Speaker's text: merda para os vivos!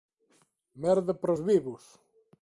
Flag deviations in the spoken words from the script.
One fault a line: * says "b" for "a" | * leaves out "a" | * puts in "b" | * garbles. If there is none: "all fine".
all fine